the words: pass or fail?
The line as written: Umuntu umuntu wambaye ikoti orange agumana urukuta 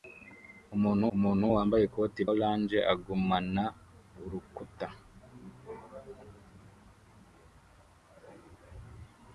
pass